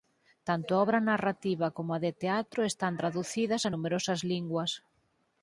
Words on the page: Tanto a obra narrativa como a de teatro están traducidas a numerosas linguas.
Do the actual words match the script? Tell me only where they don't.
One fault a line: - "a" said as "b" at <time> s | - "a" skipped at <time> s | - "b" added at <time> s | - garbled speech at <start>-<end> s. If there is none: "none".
none